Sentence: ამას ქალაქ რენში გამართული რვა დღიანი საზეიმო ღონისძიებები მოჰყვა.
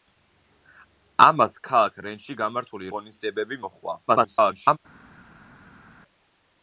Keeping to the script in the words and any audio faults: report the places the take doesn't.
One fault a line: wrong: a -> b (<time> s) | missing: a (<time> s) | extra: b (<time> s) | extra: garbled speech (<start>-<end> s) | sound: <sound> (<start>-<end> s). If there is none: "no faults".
missing: რვა დღიანი საზეიმო (2.9 s)
extra: garbled speech (4.1-4.8 s)